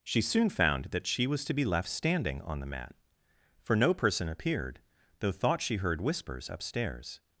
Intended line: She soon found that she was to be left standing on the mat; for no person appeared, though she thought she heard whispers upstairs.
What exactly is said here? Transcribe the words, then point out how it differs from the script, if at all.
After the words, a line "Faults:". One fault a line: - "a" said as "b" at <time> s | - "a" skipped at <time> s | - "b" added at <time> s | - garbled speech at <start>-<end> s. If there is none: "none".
She soon found that she was to be left standing on the mat; for no person appeared, though thought she heard whispers upstairs.
Faults:
- "she" skipped at 5.3 s